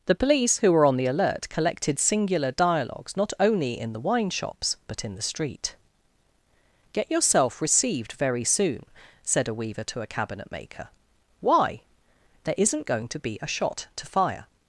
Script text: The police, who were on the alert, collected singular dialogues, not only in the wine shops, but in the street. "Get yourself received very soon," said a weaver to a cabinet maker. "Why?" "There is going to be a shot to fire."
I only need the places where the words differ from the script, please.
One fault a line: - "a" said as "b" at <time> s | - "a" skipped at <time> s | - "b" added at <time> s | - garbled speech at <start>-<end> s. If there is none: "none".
- "is" said as "isn't" at 12.6 s